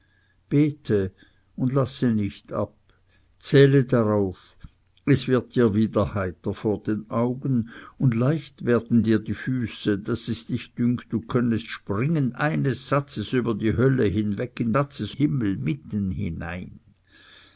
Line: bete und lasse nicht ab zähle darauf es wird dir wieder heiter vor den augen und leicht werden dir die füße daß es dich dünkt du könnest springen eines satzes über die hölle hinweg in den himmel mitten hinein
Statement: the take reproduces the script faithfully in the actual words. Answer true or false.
false